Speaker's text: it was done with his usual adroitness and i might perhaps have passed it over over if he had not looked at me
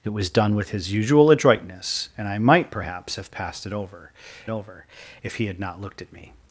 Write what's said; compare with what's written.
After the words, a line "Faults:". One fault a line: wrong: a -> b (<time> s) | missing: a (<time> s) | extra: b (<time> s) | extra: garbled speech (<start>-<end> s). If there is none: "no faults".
it was done with his usual adroitness and i might perhaps have passed it over over if he had not looked at me
Faults:
no faults